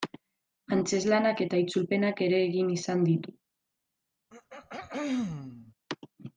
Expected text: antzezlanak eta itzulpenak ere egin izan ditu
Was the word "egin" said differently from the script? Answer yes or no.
no